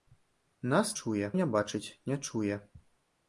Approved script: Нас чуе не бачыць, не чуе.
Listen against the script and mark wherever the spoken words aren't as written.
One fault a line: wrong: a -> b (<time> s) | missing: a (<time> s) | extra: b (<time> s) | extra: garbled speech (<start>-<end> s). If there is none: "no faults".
no faults